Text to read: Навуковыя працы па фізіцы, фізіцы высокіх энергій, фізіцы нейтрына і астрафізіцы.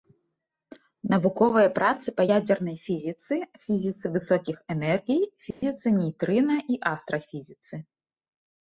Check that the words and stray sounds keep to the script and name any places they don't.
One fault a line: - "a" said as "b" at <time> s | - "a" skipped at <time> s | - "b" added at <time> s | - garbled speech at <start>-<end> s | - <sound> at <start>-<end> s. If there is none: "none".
- "ядзернай" added at 2.3 s
- dropout at 5.5-5.6 s